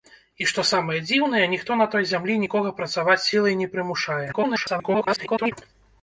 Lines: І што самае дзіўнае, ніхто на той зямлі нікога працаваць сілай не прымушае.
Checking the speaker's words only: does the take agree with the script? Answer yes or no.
no